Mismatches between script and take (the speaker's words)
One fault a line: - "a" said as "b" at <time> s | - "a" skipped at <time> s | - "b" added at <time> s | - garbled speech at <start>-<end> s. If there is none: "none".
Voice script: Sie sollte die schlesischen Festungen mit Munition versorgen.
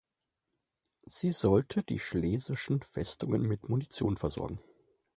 none